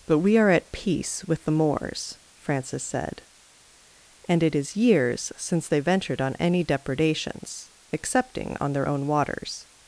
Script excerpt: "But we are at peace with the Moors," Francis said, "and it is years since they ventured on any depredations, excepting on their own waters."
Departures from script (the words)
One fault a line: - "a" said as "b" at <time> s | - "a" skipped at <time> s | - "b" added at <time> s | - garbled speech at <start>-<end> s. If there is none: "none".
none